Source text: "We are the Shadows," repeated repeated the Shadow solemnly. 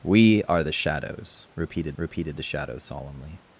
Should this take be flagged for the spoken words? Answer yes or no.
no